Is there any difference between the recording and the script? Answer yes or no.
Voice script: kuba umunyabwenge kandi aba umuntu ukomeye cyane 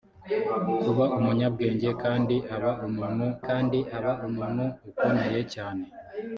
yes